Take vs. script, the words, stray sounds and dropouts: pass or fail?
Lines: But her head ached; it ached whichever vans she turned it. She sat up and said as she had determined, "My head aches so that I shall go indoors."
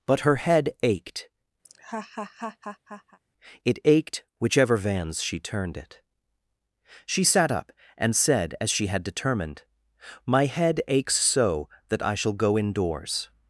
fail